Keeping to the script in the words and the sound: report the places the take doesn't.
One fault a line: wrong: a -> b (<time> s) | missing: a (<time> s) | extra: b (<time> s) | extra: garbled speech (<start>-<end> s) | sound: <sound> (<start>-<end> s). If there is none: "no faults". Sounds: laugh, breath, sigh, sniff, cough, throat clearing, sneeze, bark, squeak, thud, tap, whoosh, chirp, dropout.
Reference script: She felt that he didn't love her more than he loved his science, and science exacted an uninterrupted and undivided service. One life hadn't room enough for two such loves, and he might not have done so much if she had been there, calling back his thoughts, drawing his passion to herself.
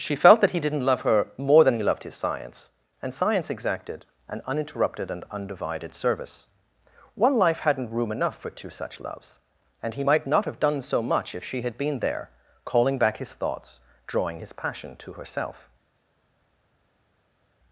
no faults